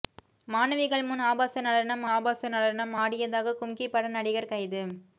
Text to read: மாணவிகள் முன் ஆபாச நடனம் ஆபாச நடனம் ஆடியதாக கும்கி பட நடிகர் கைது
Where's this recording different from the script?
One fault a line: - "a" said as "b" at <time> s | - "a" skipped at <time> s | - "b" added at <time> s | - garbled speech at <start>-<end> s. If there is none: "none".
none